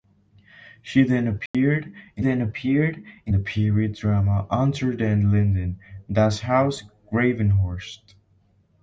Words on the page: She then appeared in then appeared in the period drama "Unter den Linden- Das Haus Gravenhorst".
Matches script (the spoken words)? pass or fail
pass